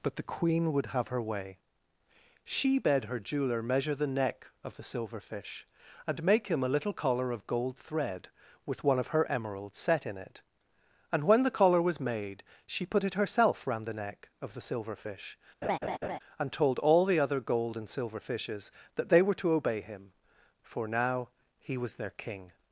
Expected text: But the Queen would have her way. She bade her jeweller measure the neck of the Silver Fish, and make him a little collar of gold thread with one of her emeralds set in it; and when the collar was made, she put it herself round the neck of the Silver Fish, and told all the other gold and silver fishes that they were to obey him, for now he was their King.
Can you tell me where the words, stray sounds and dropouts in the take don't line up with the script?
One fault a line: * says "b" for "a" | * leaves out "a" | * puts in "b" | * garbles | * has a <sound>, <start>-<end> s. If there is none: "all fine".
* has a laugh, 15.6-16.2 s